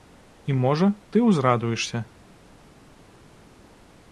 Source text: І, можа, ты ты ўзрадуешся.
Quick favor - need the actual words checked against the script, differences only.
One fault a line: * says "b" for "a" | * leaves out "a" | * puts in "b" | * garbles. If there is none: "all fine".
* leaves out "ты"